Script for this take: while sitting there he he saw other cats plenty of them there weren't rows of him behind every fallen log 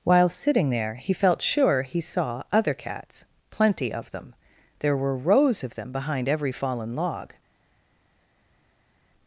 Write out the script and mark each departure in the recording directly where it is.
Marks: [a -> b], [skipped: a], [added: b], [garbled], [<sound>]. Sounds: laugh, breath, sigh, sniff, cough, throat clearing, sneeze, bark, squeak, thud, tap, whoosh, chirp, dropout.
while sitting there he [added: felt sure] he saw other cats plenty of them there [weren't -> were] rows of [him -> them] behind every fallen log